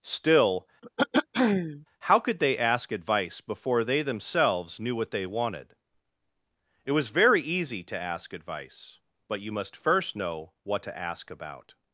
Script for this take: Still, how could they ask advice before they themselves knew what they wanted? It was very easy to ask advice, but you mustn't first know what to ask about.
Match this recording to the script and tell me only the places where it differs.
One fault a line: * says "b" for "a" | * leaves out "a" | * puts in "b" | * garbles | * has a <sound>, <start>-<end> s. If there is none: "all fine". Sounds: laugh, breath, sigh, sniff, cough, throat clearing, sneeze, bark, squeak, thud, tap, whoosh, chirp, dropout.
* has a throat clearing, 0.8-1.9 s
* says "must" for "mustn't"